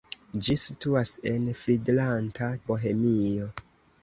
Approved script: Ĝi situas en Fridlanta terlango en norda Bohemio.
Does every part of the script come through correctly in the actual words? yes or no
no